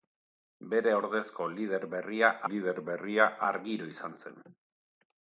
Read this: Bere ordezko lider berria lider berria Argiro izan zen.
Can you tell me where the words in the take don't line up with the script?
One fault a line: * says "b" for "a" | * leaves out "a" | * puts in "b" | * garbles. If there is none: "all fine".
all fine